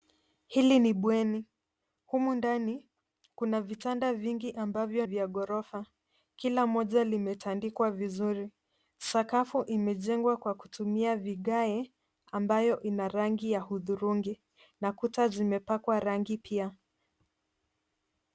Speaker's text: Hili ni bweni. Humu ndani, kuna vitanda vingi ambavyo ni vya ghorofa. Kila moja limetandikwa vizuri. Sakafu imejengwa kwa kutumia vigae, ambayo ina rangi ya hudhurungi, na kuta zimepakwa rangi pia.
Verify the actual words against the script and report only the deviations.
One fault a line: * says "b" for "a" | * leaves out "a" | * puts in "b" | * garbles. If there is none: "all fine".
* leaves out "ni"